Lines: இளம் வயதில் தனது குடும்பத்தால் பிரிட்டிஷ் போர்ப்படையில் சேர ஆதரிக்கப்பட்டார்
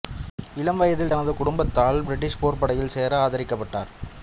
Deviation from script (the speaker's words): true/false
false